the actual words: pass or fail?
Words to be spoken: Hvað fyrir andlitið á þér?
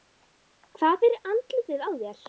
pass